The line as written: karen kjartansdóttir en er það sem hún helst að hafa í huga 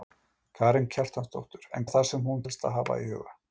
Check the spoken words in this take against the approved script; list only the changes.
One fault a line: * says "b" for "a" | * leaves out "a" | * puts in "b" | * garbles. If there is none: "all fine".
all fine